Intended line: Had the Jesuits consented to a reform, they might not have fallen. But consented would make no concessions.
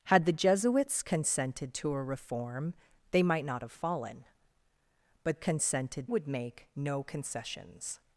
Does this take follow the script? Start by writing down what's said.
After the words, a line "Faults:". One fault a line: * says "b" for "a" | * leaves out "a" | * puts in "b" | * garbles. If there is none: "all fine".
Had the Jesuits consented to a reform, they might not have fallen. But consented would make no concessions.
Faults:
all fine